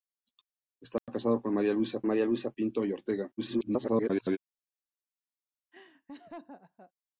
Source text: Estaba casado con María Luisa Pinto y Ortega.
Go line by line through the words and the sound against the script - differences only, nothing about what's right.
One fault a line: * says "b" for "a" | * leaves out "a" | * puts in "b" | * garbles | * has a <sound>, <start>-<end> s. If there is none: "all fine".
* has a dropout, 1.0-1.1 s
* puts in "María Luisa"
* garbles
* has a laugh, 5.7-6.9 s